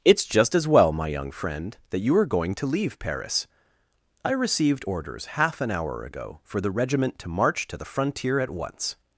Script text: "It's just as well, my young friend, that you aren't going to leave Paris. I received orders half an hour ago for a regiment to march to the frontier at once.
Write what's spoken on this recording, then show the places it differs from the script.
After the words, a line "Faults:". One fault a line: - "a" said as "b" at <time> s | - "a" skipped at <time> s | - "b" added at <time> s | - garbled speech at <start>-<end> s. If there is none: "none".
"It's just as well, my young friend, that you are going to leave Paris. I received orders half an hour ago for the regiment to march to the frontier at once.
Faults:
- "aren't" said as "are" at 2.1 s
- "a" said as "the" at 6.6 s